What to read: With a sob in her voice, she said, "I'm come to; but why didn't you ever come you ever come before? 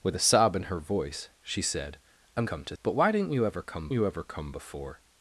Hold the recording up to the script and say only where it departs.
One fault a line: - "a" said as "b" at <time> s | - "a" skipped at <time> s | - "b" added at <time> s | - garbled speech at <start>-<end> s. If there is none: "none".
none